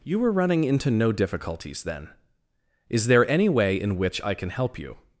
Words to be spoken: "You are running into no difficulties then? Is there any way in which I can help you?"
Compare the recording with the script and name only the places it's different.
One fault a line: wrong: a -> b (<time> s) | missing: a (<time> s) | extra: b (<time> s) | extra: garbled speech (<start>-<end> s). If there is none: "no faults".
wrong: are -> were (0.2 s)